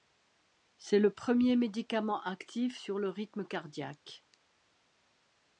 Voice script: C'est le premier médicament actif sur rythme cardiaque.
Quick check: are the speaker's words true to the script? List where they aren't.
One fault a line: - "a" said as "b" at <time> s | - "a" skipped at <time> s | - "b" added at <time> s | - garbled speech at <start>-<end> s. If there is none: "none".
- "le" added at 3.0 s